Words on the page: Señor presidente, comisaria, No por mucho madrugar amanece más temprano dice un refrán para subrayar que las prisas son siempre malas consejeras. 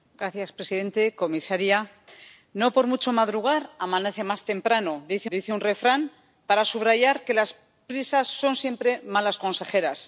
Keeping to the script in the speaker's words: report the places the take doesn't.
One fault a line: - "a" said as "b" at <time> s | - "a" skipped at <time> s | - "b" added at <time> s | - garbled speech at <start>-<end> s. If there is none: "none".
- "dice" added at 5.3 s